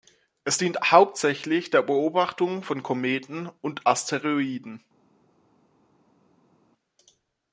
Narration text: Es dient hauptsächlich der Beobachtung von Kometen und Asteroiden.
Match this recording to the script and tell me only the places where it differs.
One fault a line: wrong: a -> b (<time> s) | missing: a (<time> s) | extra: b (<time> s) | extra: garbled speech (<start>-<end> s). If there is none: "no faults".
no faults